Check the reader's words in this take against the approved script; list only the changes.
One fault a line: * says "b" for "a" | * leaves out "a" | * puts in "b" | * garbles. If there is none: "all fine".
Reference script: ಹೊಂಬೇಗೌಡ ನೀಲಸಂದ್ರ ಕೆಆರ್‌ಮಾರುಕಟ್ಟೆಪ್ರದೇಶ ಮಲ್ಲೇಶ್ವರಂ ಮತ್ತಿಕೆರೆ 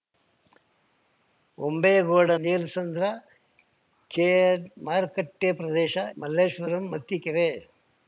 all fine